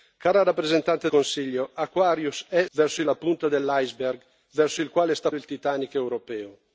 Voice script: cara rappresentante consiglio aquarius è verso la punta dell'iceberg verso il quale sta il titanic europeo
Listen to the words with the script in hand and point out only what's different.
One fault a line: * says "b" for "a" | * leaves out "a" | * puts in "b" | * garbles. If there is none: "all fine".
all fine